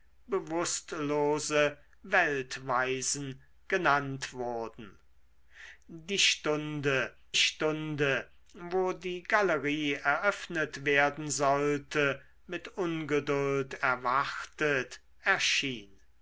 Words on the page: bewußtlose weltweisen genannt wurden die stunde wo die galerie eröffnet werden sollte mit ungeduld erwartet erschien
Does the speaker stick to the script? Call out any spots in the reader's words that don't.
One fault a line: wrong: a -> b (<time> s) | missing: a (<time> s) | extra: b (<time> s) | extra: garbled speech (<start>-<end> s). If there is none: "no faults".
extra: stunde (7.3 s)